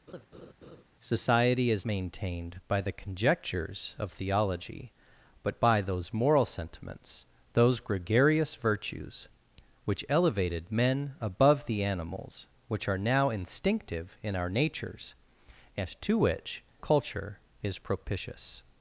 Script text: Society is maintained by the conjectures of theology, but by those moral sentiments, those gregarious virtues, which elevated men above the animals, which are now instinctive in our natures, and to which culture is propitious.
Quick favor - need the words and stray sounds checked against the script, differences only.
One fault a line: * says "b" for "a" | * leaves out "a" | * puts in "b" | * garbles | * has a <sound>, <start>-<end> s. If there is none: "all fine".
* has a laugh, 0.1-0.8 s